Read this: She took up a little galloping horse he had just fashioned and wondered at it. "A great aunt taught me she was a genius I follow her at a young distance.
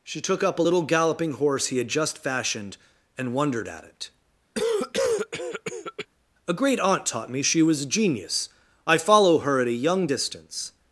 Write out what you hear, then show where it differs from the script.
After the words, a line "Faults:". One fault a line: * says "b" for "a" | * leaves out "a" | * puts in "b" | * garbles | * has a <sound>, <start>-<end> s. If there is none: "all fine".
She took up a little galloping horse he had just fashioned and wondered at it. "A great aunt taught me she was a genius I follow her at a young distance.
Faults:
* has a cough, 4.5-6.1 s